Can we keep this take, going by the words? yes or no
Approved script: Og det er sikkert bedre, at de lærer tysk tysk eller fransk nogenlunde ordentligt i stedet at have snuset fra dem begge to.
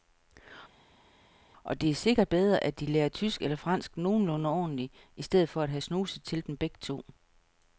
no